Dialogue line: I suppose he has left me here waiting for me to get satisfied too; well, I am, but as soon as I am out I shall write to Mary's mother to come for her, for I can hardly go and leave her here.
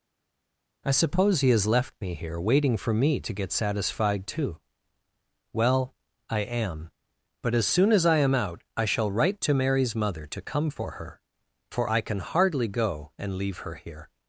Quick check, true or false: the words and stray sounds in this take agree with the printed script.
true